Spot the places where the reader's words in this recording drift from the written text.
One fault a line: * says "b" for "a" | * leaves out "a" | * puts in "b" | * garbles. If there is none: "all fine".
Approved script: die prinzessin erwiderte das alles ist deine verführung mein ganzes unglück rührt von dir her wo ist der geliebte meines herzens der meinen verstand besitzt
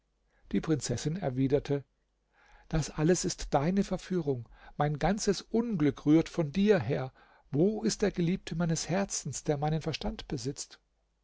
all fine